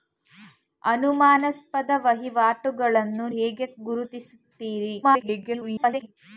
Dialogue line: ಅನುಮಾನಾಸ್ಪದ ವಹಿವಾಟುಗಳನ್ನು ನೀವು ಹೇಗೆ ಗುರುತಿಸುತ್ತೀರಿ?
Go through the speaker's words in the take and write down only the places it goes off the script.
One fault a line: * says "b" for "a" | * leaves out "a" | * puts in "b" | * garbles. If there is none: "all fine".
* leaves out "ನೀವು"
* garbles